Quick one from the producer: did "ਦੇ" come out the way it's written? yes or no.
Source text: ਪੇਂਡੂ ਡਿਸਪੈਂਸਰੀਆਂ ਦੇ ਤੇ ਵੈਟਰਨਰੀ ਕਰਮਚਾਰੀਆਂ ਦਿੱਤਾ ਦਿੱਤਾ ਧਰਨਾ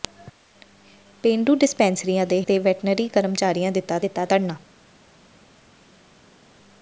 yes